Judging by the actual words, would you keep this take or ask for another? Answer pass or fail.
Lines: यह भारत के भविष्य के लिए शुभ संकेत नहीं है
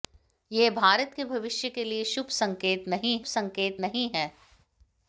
fail